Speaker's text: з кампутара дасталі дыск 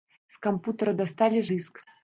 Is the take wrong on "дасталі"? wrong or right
right